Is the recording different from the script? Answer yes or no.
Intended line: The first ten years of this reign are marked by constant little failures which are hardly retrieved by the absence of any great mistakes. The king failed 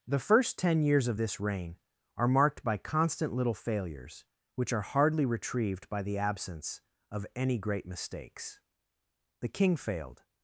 no